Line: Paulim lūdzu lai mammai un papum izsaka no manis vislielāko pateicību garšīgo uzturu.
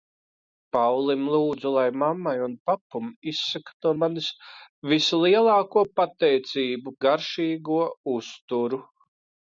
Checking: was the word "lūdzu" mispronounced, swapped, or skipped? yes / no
no